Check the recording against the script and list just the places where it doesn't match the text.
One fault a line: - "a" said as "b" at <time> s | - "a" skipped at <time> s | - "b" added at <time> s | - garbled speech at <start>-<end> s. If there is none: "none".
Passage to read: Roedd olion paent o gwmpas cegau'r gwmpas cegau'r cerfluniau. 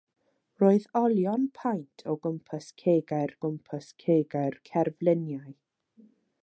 none